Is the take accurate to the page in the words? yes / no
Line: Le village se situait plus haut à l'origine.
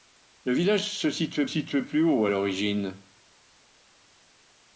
no